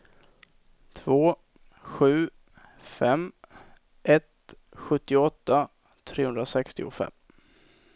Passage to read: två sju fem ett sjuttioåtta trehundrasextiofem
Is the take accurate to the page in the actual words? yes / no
yes